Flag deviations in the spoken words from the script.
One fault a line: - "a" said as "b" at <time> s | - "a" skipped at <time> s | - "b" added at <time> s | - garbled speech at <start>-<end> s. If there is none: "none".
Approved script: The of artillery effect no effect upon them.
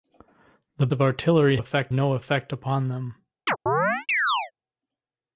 none